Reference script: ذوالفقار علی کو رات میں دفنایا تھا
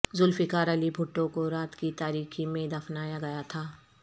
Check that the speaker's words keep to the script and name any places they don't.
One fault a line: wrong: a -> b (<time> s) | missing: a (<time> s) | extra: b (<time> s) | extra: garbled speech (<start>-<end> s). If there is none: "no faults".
extra: بھٹو (0.9 s)
extra: کی تاریکی (1.8 s)
extra: گیا (3.2 s)